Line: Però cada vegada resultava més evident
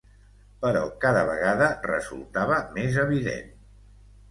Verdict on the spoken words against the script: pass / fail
pass